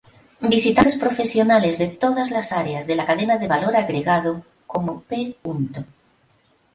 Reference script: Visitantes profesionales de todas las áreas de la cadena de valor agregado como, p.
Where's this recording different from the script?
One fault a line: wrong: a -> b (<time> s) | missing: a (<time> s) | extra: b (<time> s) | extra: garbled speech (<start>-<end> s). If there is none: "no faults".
no faults